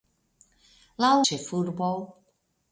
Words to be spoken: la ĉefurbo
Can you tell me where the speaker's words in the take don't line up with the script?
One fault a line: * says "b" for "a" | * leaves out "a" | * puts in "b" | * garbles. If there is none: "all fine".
all fine